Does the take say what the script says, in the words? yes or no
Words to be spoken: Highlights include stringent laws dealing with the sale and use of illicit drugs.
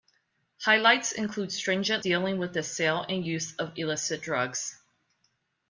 no